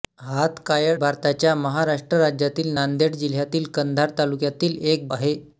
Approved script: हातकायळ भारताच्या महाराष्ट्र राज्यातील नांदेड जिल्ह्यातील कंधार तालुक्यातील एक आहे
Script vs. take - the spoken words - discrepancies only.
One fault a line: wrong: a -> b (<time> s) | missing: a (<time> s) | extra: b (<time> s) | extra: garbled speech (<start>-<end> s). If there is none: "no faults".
no faults